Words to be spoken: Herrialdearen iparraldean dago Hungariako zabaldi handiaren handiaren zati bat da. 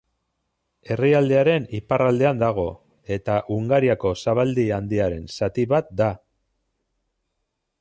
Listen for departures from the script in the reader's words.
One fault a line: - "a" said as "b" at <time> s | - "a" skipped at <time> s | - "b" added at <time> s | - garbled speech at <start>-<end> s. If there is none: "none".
- "eta" added at 3.2 s
- "handiaren" skipped at 5.3 s